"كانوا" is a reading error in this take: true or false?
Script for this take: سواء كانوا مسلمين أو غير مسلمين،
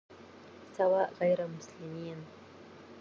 true